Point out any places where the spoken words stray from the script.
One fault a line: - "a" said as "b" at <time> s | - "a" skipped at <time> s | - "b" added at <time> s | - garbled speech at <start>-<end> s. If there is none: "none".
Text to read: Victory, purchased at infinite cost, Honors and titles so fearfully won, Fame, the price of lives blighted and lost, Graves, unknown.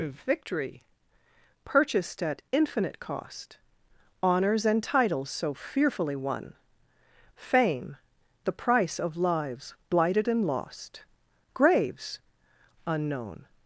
none